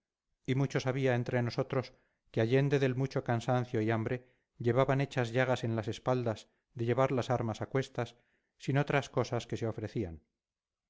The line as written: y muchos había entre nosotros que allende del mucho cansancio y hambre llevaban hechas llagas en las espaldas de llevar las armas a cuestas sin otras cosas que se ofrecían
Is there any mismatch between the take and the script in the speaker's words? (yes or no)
no